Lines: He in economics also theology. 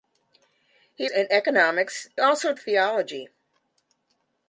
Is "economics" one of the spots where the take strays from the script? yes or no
no